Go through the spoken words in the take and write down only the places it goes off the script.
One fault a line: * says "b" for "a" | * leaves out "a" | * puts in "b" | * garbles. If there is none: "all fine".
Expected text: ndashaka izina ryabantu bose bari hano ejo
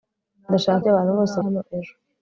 * leaves out "izina"
* leaves out "bari"